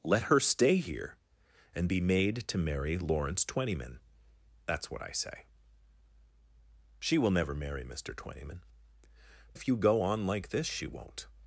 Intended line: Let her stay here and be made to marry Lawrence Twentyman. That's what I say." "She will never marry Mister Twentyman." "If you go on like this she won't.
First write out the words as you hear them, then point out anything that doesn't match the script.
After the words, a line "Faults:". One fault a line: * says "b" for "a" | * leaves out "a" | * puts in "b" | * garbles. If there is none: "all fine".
Let her stay here and be made to marry Lawrence Twentyman. That's what I say." "She will never marry Mister Twentyman." "If you go on like this she won't.
Faults:
all fine